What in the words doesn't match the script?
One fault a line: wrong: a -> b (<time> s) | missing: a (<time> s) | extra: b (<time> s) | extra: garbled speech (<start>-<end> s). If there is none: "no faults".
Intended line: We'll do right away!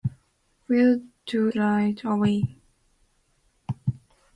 no faults